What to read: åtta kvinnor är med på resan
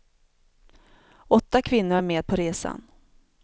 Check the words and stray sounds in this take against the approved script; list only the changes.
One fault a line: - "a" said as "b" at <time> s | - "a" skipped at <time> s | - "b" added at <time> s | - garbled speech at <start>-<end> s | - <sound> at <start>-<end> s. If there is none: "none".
none